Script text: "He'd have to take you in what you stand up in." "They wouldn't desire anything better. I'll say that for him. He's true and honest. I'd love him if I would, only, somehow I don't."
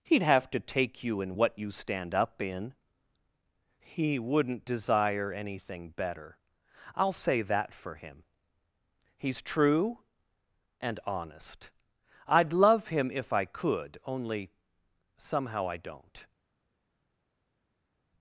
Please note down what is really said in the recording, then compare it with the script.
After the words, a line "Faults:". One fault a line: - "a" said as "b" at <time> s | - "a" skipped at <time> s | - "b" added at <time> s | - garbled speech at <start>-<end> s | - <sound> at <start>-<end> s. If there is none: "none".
"He'd have to take you in what you stand up in." "He wouldn't desire anything better. I'll say that for him. He's true and honest. I'd love him if I could, only, somehow I don't."
Faults:
- "They" said as "He" at 3.8 s
- "would" said as "could" at 13.4 s